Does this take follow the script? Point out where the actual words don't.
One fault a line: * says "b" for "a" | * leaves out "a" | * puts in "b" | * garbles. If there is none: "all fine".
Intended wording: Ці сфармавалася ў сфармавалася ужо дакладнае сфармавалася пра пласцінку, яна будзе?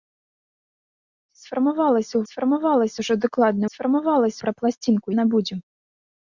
all fine